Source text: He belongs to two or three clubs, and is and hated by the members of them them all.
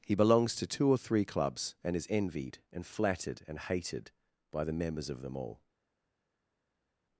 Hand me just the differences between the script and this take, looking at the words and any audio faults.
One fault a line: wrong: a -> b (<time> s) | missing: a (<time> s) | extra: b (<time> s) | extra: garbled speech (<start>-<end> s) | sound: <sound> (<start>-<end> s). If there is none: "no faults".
extra: envied (2.1 s)
extra: flattered and (2.9 s)
missing: them (5.3 s)